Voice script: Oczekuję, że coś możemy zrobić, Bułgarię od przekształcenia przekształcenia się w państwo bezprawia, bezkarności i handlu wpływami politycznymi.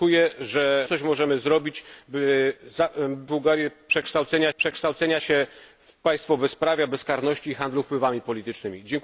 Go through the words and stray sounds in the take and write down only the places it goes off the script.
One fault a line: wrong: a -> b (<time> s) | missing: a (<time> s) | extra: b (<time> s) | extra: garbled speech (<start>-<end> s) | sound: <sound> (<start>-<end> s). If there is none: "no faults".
no faults